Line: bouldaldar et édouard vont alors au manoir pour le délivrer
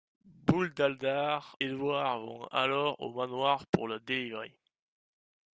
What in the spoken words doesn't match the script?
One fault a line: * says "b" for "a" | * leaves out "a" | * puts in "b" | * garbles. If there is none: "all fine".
* leaves out "et"